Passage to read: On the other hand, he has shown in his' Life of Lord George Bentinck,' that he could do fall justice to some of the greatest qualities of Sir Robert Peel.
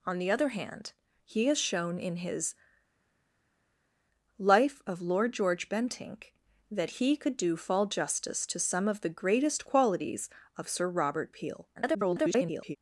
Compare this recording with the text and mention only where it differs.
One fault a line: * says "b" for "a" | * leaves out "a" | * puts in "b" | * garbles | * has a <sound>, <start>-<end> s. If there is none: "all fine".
* garbles